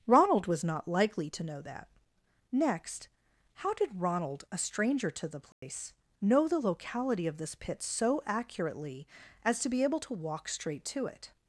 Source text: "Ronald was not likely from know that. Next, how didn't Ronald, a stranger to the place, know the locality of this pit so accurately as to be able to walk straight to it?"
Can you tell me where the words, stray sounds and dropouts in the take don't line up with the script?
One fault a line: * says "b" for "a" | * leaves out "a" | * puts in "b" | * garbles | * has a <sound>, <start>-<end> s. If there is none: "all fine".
* says "to" for "from"
* says "did" for "didn't"
* has a dropout, 5.5-5.6 s